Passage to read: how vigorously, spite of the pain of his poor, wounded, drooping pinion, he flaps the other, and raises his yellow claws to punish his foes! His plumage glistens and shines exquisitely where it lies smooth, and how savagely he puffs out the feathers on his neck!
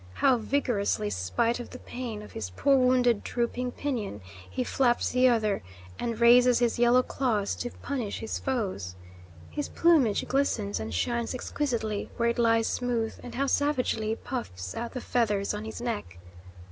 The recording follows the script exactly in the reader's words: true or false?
true